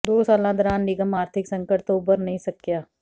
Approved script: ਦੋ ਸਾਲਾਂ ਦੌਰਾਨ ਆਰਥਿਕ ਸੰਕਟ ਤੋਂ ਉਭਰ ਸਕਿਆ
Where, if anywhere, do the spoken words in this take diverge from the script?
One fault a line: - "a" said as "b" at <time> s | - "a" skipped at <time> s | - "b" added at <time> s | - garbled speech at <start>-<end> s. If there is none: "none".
- "ਨਿਗਮ" added at 0.8 s
- "ਨਹੀਂ" added at 2.2 s